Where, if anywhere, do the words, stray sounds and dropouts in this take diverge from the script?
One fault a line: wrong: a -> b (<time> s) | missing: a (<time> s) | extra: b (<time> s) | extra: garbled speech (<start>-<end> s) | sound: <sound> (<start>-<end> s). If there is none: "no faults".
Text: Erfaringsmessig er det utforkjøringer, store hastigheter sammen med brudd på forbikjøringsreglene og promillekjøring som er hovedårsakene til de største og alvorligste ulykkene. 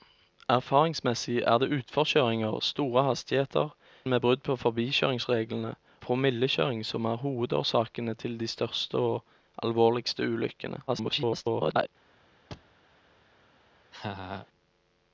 missing: sammen (3.7 s)
missing: og (5.7 s)
extra: garbled speech (10.9-11.9 s)
sound: thud (12.5-12.8 s)
sound: laugh (13.9-14.5 s)